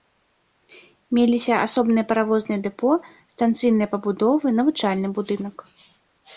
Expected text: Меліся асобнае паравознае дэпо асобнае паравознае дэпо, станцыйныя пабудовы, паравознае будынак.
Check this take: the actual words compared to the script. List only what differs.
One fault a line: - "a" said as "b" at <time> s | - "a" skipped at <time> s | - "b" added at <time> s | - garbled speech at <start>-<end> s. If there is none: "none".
- "асобнае паравознае дэпо" skipped at 2.9 s
- "паравознае" said as "навучальны" at 4.6 s